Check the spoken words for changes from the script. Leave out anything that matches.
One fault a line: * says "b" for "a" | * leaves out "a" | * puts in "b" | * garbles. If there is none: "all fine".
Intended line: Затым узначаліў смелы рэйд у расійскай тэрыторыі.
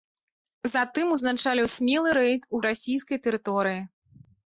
all fine